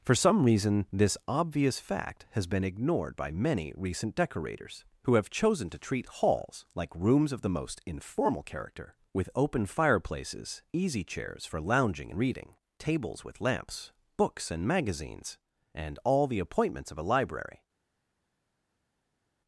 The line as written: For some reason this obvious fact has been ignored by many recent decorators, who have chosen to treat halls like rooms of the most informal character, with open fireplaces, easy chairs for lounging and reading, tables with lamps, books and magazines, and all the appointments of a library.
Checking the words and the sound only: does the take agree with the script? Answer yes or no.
yes